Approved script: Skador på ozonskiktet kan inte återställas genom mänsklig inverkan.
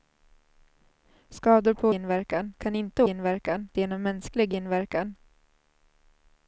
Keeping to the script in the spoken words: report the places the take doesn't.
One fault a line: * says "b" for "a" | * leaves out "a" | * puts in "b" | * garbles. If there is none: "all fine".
* says "inverkan" for "ozonskiktet"
* says "inverkan" for "återställas"